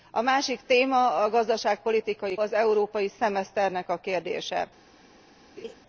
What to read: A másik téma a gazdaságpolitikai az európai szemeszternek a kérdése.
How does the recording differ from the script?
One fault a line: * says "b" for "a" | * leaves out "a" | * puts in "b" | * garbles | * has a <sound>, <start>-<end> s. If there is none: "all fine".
* has a laugh, 5.6-5.7 s